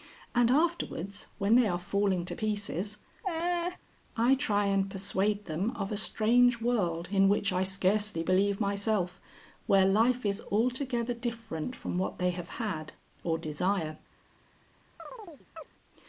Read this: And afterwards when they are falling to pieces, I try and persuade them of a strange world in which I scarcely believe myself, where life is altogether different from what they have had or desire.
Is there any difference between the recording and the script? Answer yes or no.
no